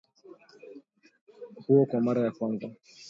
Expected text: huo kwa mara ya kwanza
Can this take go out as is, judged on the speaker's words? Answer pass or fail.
pass